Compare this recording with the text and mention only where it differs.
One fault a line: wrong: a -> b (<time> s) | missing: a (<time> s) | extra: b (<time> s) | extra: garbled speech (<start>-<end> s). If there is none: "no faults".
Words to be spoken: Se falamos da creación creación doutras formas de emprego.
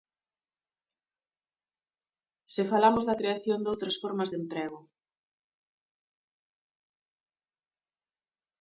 missing: creación (3.6 s)